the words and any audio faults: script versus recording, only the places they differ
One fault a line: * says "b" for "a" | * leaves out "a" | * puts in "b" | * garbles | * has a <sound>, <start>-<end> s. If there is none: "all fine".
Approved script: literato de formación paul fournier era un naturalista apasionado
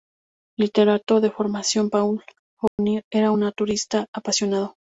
* has a dropout, 2.7-2.8 s